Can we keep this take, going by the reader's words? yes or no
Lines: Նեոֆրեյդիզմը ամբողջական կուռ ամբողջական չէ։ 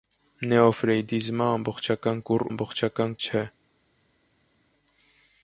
yes